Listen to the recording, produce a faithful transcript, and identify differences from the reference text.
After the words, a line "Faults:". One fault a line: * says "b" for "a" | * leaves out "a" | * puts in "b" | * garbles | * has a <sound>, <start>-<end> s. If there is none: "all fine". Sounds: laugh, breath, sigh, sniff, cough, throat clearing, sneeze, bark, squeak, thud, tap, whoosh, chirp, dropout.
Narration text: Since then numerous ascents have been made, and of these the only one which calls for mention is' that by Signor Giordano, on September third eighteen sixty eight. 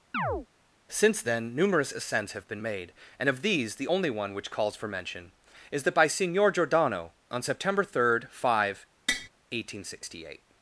Since then numerous ascents have been made, and of these the only one which calls for mention is' that by Signor Giordano, on September third five, eighteen sixty eight.
Faults:
* has a chirp, 0.1-0.5 s
* puts in "five"
* has a tap, 9.1-9.3 s